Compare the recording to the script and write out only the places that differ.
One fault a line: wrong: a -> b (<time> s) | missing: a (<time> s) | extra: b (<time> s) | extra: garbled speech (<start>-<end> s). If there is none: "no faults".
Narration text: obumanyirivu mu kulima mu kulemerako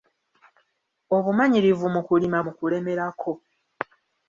no faults